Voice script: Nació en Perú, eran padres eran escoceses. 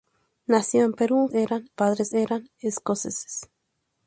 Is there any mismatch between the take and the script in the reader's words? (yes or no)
no